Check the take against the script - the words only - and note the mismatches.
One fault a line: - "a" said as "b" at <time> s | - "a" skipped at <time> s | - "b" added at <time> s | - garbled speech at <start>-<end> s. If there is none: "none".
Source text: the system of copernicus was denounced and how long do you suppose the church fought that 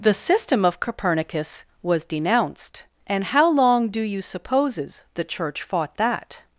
- "suppose" said as "supposes" at 4.2 s